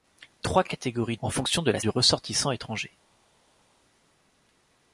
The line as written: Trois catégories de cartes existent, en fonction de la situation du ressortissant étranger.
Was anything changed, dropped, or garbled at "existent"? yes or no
yes